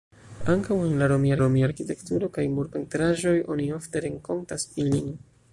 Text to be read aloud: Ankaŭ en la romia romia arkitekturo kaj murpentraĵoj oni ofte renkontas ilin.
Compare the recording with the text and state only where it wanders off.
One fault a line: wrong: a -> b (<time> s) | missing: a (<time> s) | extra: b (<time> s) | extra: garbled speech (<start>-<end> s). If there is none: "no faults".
no faults